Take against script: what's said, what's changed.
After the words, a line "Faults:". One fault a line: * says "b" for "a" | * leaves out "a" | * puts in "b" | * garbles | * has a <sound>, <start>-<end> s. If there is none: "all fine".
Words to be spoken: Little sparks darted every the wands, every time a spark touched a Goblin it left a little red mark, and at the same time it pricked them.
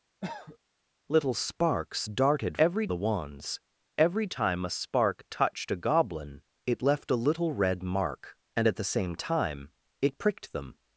Little sparks darted every the wands, every time a spark touched a Goblin it left a little red mark, and at the same time it pricked them.
Faults:
* has a cough, 0.2-0.6 s